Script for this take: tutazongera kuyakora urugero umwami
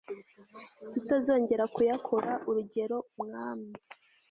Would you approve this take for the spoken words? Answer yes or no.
yes